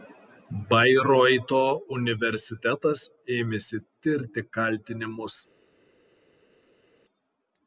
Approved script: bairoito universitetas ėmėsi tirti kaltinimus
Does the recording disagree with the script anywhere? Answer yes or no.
no